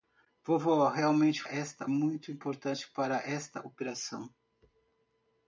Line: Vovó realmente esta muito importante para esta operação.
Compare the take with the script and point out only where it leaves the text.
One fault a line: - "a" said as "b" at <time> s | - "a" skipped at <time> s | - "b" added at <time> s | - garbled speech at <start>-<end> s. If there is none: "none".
none